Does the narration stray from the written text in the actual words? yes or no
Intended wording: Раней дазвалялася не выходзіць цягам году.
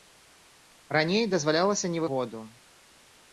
yes